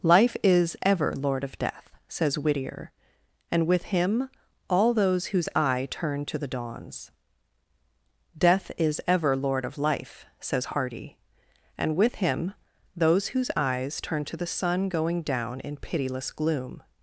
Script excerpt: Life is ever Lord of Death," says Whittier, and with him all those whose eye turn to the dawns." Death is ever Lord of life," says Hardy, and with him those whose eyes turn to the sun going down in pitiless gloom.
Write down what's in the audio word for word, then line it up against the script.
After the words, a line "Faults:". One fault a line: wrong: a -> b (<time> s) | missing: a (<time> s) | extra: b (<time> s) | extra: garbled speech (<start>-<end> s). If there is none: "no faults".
Life is ever Lord of Death," says Whittier, and with him all those whose eye turn to the dawns." Death is ever Lord of life," says Hardy, and with him those whose eyes turn to the sun going down in pitiless gloom.
Faults:
no faults